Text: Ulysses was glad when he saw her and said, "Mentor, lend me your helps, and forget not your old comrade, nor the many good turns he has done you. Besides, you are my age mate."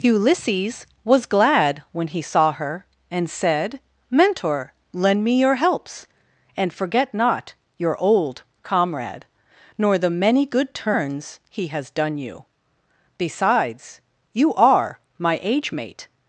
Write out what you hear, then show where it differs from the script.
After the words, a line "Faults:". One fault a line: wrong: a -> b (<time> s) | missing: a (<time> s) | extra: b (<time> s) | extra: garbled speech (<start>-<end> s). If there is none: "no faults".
Ulysses was glad when he saw her and said, "Mentor, lend me your helps, and forget not your old comrade, nor the many good turns he has done you. Besides, you are my age mate."
Faults:
no faults